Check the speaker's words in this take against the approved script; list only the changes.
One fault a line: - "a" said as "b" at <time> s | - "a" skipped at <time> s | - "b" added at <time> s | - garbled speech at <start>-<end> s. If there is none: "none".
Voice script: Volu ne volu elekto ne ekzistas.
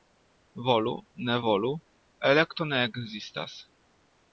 none